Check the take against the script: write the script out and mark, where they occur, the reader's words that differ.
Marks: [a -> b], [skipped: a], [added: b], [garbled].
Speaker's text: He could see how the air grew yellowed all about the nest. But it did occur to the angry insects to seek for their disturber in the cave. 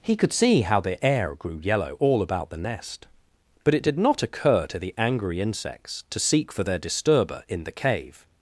He could see how the air grew [yellowed -> yellow] all about the nest. But it did [added: not] occur to the angry insects to seek for their disturber in the cave.